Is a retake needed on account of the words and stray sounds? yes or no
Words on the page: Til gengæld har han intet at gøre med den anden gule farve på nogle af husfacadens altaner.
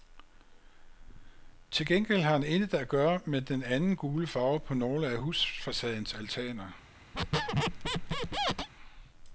yes